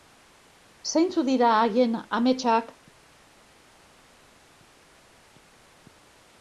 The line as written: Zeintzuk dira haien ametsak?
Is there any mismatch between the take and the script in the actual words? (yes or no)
no